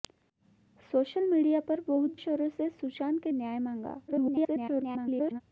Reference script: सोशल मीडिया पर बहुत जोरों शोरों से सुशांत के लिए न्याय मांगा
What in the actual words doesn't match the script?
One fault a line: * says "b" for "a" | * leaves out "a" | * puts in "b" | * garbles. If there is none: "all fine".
* leaves out "जोरों"
* leaves out "लिए"
* garbles